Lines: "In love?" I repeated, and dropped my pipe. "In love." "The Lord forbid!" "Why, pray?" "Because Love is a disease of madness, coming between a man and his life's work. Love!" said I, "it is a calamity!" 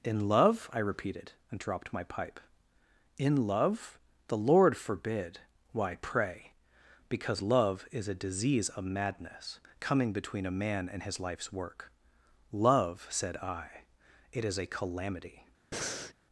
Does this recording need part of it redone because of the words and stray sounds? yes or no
yes